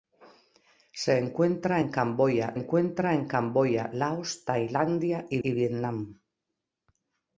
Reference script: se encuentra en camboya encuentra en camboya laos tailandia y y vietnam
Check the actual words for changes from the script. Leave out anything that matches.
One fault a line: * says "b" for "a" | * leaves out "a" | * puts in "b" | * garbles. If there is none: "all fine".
all fine